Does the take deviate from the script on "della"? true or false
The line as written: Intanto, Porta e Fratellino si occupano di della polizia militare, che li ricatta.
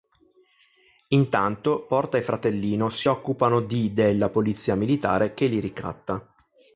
false